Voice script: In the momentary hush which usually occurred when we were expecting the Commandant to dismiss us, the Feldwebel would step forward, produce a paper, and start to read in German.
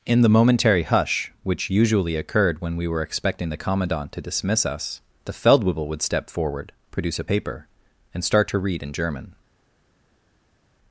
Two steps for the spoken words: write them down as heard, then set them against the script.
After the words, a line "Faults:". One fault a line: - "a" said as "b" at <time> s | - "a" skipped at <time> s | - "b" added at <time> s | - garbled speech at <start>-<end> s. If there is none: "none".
In the momentary hush which usually occurred when we were expecting the Commandant to dismiss us, the Feldwebel would step forward, produce a paper, and start to read in German.
Faults:
none